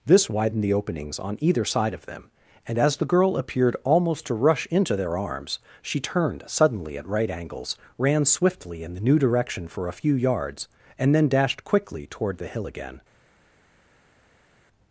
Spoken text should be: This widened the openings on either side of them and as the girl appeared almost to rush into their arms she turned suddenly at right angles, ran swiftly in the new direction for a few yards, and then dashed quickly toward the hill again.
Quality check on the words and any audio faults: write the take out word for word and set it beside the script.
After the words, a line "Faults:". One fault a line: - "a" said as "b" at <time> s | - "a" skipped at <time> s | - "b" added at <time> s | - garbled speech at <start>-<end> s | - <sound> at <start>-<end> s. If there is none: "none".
This widened the openings on either side of them and as the girl appeared almost to rush into their arms she turned suddenly at right angles, ran swiftly in the new direction for a few yards, and then dashed quickly toward the hill again.
Faults:
none